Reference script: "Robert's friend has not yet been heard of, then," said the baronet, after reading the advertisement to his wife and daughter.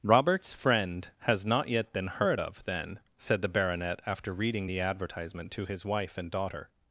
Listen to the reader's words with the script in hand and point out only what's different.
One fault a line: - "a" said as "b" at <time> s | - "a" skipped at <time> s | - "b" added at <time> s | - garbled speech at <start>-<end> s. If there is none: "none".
none